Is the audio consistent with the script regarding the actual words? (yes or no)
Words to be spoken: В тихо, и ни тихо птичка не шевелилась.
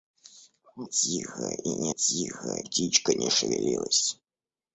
yes